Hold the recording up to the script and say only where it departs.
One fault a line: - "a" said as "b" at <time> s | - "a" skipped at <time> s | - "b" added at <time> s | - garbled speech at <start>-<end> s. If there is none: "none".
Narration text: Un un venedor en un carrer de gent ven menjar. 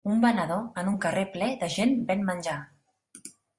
- "un" skipped at 0.2 s
- "ple" added at 1.4 s